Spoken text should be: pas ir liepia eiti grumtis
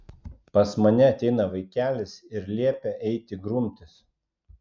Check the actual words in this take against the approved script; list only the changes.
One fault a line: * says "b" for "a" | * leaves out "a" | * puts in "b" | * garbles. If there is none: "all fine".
* puts in "mane ateina vaikelis"